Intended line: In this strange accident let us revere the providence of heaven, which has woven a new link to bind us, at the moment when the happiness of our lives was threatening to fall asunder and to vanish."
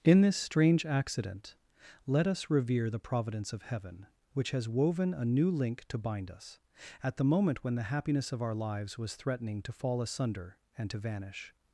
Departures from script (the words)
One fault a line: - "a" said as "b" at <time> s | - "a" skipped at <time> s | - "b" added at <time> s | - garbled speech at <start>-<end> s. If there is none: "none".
none